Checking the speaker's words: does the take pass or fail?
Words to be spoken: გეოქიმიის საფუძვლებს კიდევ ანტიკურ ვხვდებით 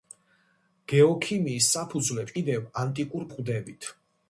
pass